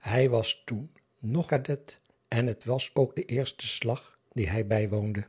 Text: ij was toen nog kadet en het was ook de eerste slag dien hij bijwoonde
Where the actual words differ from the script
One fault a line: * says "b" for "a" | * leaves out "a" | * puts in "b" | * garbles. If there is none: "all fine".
all fine